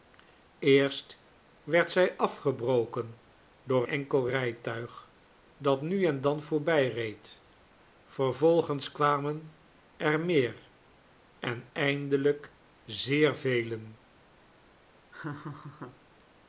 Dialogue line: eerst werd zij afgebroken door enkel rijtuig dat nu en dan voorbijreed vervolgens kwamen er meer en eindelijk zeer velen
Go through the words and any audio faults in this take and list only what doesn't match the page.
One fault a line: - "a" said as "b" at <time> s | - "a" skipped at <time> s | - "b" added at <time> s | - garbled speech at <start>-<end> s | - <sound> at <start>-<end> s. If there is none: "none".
- laugh at 15.1-16.0 s